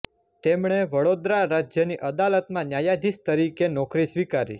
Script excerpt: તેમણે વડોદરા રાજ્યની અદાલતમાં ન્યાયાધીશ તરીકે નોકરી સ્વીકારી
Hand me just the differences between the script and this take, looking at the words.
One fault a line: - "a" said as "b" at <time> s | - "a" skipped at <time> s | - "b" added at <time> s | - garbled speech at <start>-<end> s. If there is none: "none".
none